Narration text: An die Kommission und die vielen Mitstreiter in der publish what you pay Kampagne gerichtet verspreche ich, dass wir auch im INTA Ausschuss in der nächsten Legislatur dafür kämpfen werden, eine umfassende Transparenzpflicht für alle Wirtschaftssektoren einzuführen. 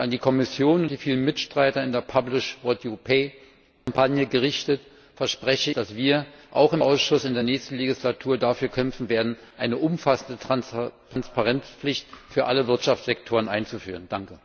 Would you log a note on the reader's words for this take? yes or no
yes